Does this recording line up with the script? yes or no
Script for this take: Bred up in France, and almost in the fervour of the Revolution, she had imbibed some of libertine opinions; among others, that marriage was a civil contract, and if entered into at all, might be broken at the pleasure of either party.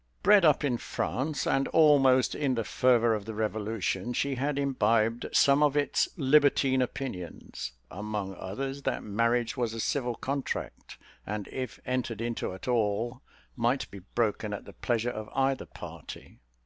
no